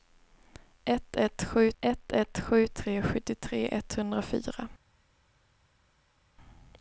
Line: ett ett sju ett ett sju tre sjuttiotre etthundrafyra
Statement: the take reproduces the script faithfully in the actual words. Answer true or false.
true